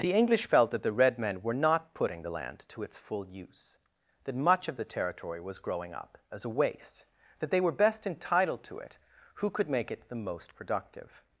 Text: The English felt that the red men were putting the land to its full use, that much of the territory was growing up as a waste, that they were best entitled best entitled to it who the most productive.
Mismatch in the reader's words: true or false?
true